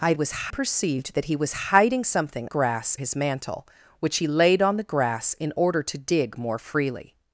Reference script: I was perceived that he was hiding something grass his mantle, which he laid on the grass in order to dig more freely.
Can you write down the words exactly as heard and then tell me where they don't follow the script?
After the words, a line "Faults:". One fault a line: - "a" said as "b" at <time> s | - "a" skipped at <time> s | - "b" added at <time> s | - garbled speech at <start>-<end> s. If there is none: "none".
I was perceived that he was hiding something grass his mantle, which he laid on the grass in order to dig more freely.
Faults:
none